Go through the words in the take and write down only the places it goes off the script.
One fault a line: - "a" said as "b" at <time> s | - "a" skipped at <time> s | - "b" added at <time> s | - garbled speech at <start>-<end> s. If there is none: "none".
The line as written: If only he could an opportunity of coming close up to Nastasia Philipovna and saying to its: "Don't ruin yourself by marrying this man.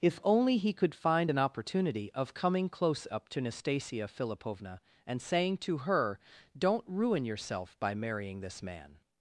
- "find" added at 0.9 s
- "its" said as "her" at 5.8 s